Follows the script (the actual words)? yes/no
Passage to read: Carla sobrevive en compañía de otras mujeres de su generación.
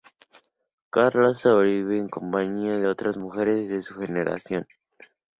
yes